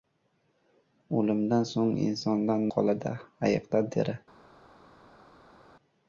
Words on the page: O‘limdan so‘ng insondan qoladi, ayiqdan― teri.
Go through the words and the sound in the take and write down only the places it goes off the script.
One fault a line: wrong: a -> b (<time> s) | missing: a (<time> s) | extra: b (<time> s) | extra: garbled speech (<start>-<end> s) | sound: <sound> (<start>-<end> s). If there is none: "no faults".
no faults